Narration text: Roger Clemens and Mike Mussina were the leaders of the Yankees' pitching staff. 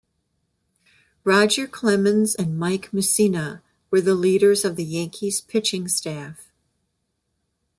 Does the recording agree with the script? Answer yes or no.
yes